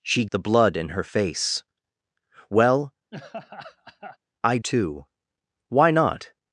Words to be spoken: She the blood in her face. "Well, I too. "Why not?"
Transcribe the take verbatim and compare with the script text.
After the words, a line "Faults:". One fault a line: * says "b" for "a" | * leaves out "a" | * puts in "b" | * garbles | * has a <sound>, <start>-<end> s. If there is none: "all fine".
She the blood in her face. "Well, I too. "Why not?"
Faults:
* has a laugh, 3.1-4.2 s